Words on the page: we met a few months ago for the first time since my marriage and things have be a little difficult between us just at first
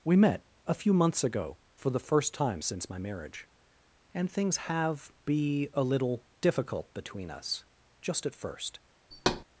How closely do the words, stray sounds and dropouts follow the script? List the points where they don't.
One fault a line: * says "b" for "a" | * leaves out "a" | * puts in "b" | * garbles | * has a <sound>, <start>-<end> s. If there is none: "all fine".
* has a thud, 9.1-9.4 s